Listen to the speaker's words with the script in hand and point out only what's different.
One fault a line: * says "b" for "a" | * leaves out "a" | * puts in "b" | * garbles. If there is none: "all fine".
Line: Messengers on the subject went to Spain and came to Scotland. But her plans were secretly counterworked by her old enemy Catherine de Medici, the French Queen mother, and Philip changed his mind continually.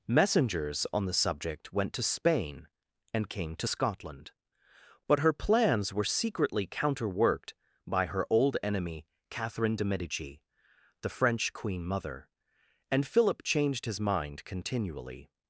all fine